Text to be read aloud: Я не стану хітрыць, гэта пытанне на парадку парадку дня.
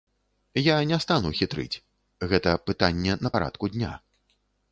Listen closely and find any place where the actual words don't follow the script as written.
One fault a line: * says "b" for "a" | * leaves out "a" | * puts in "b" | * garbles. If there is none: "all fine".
* leaves out "парадку"